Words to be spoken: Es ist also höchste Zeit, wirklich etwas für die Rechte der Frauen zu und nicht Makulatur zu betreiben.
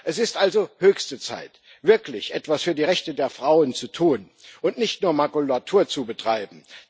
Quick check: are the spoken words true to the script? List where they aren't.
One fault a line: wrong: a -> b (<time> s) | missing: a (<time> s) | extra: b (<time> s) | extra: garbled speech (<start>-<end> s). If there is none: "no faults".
extra: tun (3.9 s)
extra: nur (5.0 s)